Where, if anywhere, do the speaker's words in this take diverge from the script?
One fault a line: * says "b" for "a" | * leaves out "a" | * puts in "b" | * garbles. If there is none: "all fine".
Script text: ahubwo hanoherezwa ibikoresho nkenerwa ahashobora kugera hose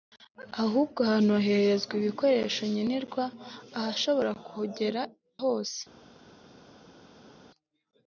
all fine